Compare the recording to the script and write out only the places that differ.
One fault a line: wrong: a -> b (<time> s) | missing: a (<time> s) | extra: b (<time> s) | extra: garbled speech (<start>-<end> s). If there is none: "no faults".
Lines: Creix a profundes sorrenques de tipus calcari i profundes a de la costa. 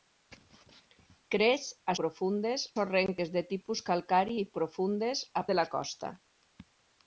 no faults